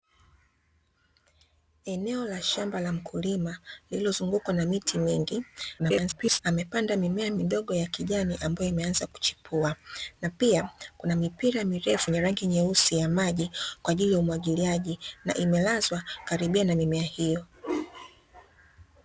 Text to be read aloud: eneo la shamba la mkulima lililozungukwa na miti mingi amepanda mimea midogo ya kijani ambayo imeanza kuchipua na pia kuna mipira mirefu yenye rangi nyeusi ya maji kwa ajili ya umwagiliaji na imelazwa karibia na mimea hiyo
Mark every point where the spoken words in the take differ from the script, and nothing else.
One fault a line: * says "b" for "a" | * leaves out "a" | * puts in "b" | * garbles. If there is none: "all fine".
* garbles